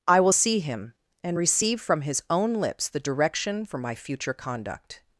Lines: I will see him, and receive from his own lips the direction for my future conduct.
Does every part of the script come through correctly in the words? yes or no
yes